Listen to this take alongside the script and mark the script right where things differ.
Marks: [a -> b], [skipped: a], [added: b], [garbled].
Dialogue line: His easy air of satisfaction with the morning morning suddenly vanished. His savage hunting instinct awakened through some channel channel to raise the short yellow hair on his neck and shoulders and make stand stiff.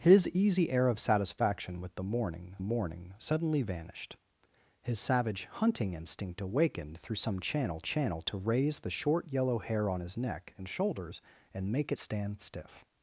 His easy air of satisfaction with the morning morning suddenly vanished. His savage hunting instinct awakened through some channel channel to raise the short yellow hair on his neck and shoulders and make stand stiff.